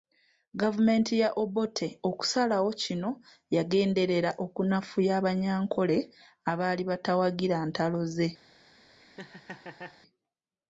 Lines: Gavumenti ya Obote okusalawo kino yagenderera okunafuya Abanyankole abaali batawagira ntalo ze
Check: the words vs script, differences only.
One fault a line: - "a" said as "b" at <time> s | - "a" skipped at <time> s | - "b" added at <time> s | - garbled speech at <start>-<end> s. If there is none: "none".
none